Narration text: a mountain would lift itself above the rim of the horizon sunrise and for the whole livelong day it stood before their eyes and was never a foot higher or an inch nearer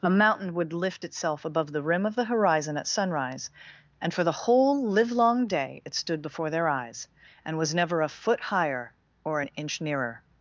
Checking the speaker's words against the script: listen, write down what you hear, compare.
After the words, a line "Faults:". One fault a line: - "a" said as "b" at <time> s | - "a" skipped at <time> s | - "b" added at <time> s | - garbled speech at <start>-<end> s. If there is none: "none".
a mountain would lift itself above the rim of the horizon at sunrise and for the whole livelong day it stood before their eyes and was never a foot higher or an inch nearer
Faults:
- "at" added at 2.8 s